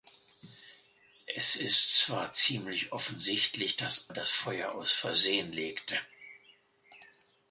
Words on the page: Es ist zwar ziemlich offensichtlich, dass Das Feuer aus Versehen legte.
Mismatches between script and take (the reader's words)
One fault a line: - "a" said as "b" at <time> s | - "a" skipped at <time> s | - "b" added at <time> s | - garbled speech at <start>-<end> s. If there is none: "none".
none